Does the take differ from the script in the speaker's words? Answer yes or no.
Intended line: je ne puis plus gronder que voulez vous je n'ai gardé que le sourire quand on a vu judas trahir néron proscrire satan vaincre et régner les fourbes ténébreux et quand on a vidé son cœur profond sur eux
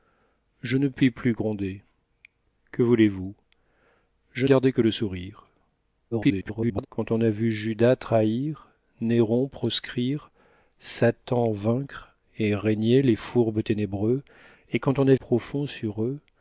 yes